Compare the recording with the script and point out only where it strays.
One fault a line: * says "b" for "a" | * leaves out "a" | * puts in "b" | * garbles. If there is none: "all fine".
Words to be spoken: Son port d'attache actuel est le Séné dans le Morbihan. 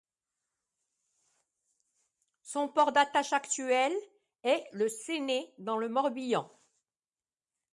all fine